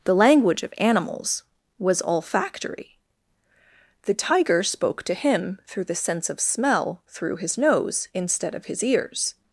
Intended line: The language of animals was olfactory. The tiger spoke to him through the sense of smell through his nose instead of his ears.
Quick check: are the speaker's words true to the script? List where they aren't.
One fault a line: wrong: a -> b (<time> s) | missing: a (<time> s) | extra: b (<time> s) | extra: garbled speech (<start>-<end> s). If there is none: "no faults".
no faults